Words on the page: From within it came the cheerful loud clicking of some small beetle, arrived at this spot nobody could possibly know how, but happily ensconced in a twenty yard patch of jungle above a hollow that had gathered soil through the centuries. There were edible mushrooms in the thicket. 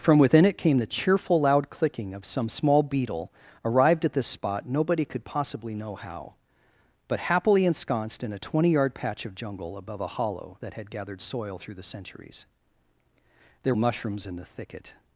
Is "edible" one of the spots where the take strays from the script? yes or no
yes